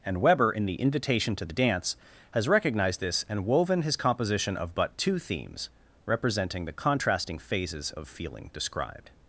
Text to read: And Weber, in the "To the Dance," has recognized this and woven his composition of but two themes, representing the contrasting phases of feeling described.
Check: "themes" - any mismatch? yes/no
no